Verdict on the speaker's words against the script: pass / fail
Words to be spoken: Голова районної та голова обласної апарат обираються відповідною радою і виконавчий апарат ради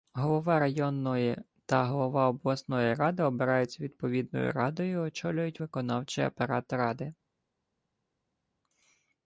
fail